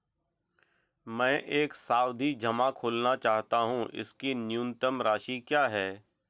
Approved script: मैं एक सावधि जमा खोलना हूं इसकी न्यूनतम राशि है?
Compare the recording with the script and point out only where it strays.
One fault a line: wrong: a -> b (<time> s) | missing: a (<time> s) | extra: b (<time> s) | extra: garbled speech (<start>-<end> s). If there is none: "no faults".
extra: चाहता (3.2 s)
extra: क्या (5.5 s)